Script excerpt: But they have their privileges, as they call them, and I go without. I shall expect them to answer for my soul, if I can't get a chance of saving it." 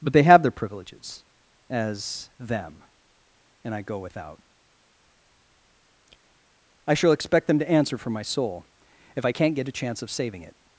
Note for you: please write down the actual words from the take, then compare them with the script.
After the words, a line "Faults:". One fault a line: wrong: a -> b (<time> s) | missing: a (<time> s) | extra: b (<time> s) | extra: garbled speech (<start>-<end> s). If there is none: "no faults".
But they have their privileges, as them, and I go without. I shall expect them to answer for my soul, if I can't get a chance of saving it."
Faults:
missing: they call (2.3 s)